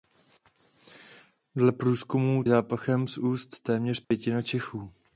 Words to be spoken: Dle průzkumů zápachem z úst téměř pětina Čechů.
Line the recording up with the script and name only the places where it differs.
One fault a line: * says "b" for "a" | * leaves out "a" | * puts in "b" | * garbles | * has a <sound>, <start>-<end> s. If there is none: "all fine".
* has a dropout, 4.0-4.1 s